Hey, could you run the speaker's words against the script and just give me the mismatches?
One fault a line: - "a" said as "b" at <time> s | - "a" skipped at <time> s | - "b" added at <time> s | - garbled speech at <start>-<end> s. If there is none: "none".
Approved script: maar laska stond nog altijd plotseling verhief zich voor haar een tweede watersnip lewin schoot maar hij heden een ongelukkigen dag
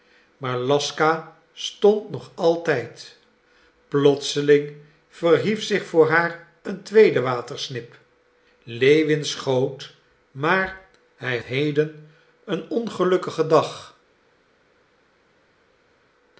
none